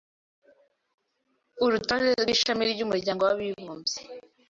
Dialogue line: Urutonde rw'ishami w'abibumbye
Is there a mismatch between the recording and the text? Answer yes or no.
yes